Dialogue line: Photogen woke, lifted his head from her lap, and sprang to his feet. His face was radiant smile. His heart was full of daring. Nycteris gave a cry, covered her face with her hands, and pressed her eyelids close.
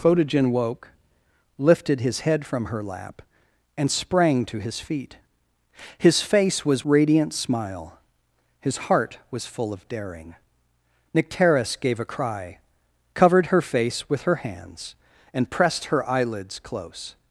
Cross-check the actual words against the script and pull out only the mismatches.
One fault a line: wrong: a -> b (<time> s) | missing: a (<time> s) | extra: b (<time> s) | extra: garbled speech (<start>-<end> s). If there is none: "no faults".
no faults